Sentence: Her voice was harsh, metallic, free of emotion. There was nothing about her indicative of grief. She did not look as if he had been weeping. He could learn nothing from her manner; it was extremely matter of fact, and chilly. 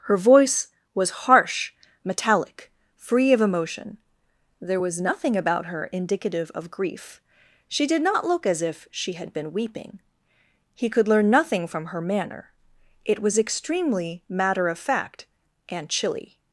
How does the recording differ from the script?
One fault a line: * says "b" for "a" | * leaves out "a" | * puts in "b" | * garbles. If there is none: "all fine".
* says "she" for "he"